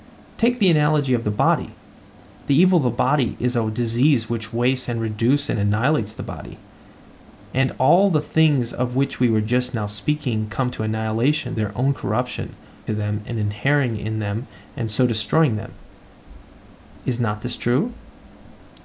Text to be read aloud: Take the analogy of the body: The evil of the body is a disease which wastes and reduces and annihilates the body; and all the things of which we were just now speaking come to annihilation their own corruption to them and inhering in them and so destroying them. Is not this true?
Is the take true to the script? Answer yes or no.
yes